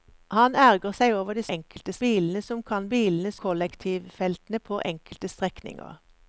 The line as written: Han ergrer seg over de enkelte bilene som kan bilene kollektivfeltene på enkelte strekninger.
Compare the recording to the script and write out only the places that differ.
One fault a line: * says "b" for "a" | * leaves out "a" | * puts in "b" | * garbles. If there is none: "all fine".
all fine